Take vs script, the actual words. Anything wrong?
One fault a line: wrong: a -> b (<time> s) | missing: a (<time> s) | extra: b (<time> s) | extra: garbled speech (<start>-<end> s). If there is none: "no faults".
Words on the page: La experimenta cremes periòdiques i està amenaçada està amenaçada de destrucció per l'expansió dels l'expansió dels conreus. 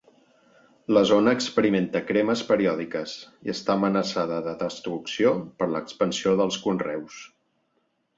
extra: zona (1.1 s)
missing: està amenaçada (4.4 s)
missing: l'expansió dels (6.6 s)